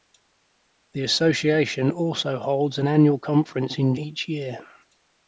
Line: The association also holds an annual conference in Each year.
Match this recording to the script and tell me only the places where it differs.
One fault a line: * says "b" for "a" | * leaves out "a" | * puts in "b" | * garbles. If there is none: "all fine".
all fine